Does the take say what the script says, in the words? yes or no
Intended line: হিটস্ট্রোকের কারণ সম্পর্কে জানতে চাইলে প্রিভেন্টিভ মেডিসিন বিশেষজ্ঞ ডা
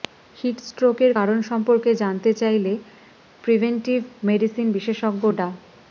yes